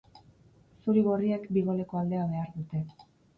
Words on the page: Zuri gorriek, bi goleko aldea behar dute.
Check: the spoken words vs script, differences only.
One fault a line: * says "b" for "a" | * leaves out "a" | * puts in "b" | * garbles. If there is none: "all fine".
all fine